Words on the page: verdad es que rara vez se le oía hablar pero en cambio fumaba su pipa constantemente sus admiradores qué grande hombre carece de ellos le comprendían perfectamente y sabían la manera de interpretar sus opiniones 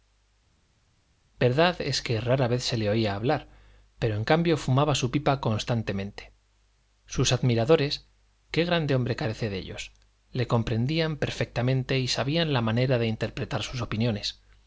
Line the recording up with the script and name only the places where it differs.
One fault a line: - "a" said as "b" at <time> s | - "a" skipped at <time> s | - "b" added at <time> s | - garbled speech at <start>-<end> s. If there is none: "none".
none